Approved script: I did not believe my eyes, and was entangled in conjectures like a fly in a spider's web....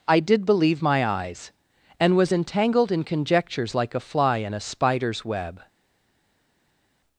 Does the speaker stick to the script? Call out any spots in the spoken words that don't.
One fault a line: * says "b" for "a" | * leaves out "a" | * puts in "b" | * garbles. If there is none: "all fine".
* leaves out "not"